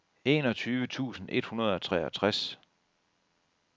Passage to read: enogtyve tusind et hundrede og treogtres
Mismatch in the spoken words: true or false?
false